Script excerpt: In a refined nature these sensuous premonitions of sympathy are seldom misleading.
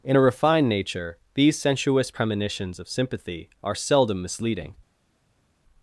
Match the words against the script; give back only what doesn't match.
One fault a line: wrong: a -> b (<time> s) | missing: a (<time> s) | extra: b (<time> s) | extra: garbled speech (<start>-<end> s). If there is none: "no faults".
no faults